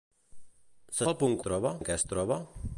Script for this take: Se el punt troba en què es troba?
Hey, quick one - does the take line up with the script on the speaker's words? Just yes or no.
yes